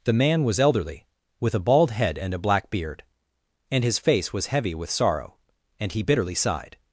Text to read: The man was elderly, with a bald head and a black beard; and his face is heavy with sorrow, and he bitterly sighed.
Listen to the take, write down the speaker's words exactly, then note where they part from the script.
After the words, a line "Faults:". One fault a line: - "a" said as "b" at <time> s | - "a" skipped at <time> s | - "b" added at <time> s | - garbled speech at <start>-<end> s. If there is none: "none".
The man was elderly, with a bald head and a black beard; and his face was heavy with sorrow, and he bitterly sighed.
Faults:
- "is" said as "was" at 4.3 s